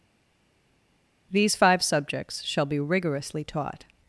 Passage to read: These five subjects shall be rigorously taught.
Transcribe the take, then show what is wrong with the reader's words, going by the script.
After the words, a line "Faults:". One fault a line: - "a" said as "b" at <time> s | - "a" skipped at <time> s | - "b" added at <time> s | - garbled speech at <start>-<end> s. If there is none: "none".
These five subjects shall be rigorously taught.
Faults:
none